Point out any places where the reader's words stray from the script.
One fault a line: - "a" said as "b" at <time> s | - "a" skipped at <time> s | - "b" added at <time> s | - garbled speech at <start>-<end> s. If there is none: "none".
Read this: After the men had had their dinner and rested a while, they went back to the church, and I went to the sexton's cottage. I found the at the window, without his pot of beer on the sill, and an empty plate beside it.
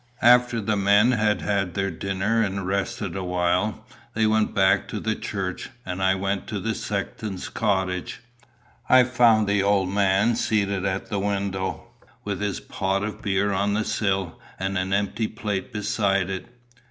- "old man seated" added at 9.6 s
- "without" said as "with" at 12.2 s